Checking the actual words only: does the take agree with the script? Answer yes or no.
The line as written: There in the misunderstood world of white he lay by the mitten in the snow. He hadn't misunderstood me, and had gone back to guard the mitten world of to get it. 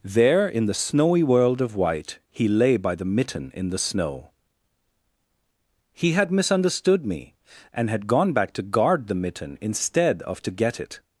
no